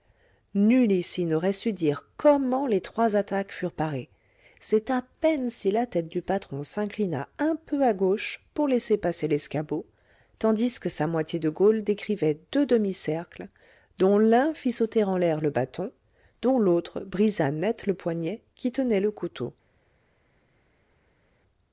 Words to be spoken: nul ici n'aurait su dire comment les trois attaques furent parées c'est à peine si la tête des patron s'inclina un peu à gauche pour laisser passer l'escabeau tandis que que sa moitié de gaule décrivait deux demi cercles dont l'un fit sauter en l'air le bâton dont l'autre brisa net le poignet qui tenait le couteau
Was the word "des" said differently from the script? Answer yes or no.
yes